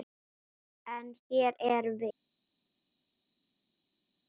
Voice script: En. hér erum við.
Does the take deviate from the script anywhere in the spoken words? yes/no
no